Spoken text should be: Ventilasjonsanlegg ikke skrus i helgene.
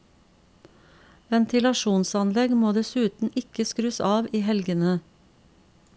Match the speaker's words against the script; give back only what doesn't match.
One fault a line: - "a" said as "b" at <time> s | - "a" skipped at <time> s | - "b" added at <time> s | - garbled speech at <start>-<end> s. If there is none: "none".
- "må dessuten" added at 2.6 s
- "av" added at 4.1 s